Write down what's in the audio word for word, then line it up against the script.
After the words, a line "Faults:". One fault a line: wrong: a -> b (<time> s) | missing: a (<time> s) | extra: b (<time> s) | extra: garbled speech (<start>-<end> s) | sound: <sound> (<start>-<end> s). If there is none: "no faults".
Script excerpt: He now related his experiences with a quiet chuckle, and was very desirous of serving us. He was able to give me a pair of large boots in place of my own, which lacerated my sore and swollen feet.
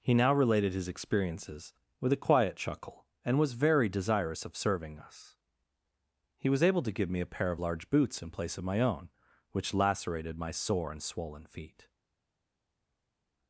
He now related his experiences with a quiet chuckle, and was very desirous of serving us. He was able to give me a pair of large boots in place of my own, which lacerated my sore and swollen feet.
Faults:
no faults